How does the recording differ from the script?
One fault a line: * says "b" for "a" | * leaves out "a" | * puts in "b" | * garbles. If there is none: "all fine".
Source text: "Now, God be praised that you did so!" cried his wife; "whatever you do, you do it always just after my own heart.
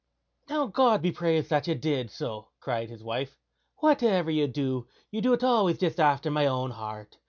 all fine